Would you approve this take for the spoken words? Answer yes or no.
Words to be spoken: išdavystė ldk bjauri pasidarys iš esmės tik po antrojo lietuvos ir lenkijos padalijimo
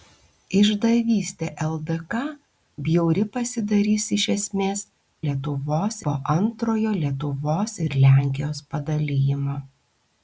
no